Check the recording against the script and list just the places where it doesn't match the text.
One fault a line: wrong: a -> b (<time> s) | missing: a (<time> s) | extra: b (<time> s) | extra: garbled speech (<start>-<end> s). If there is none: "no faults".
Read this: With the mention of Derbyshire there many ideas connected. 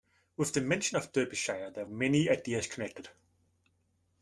no faults